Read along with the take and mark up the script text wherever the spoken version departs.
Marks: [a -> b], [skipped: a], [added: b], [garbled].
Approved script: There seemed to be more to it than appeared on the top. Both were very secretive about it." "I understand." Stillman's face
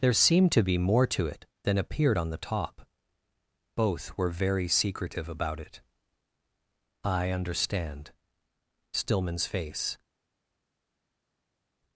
There seemed to be more to it than appeared on the top. Both were very secretive about it." "I understand." Stillman's face